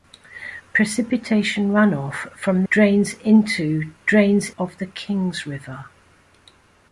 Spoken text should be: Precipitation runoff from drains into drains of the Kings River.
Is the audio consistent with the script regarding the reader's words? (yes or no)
yes